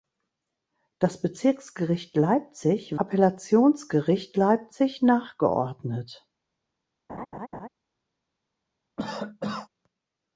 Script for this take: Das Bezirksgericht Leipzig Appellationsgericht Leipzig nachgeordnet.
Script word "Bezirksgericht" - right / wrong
right